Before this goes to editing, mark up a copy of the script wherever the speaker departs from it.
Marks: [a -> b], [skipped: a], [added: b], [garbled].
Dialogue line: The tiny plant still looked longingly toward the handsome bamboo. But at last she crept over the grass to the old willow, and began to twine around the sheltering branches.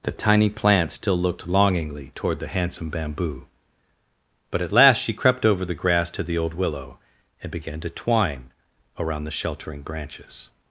The tiny plant still looked longingly toward the handsome bamboo. But at last she crept over the grass to the old willow, and began to twine around the sheltering branches.